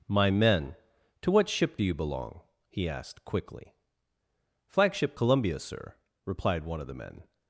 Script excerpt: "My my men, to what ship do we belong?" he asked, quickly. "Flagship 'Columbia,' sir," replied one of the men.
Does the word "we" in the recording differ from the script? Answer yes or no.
yes